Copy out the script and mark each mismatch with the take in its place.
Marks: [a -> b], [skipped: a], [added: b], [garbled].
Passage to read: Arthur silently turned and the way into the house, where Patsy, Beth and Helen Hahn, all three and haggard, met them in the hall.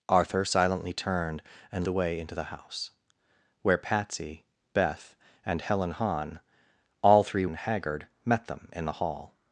Arthur silently turned and the way into the house, where Patsy, Beth and Helen Hahn, all three and haggard, met them in the hall.